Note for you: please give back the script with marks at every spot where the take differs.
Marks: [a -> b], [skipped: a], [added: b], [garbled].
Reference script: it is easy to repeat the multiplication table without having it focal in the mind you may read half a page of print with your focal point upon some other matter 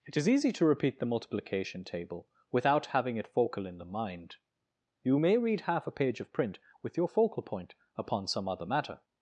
it is easy to repeat the multiplication table without having it focal in the mind you may read half a page of print with your focal point upon some other matter